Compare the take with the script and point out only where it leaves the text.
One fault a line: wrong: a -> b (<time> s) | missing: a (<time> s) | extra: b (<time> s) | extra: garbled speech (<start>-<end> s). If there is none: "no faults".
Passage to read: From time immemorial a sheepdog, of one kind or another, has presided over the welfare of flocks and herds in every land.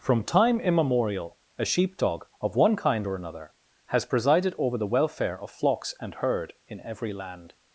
wrong: herds -> herd (6.1 s)